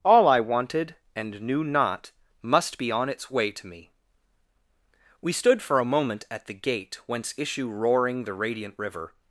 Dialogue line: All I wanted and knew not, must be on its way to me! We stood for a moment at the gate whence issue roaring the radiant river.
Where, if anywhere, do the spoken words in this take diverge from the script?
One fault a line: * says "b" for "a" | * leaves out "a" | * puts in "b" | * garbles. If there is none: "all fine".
all fine